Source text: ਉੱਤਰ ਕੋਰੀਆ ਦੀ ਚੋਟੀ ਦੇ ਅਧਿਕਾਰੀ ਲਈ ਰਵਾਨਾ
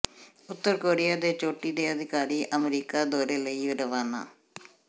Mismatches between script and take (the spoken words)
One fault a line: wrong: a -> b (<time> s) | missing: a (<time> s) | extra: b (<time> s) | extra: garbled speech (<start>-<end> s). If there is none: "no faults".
wrong: ਦੀ -> ਦੇ (1.1 s)
extra: ਅਮਰੀਕਾ ਦੌਰੇ (2.6 s)